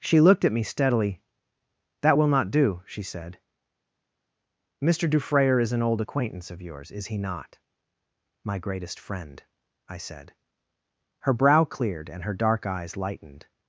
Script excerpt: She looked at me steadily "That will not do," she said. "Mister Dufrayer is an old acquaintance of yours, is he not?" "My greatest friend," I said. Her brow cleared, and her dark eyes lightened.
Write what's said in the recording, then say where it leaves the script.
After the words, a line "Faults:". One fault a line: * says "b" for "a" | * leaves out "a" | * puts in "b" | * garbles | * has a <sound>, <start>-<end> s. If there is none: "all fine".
She looked at me steadily "That will not do," she said. "Mister Dufrayer is an old acquaintance of yours, is he not?" "My greatest friend," I said. Her brow cleared, and her dark eyes lightened.
Faults:
all fine